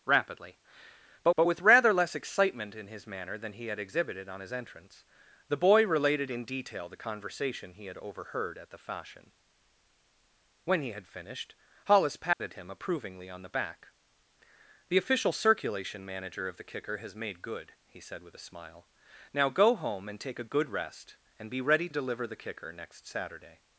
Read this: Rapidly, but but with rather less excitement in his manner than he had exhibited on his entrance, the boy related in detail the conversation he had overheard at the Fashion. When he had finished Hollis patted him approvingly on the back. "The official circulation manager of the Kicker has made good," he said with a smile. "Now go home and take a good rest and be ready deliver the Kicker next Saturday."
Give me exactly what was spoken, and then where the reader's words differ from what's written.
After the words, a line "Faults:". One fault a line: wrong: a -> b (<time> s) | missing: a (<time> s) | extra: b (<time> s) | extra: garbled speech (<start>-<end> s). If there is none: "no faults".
Rapidly, but but with rather less excitement in his manner than he had exhibited on his entrance, the boy related in detail the conversation he had overheard at the Fashion. When he had finished Hollis patted him approvingly on the back. "The official circulation manager of the Kicker has made good," he said with a smile. "Now go home and take a good rest and be ready deliver the Kicker next Saturday."
Faults:
no faults